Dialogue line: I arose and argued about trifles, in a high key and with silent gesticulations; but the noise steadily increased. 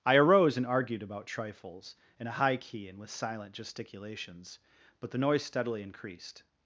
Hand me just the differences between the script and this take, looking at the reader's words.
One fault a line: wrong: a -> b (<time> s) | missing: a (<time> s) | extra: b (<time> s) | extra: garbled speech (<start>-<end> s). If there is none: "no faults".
no faults